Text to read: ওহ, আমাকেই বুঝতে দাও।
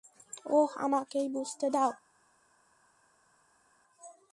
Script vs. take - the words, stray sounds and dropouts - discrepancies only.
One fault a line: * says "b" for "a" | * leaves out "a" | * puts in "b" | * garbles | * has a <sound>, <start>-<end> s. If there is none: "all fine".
all fine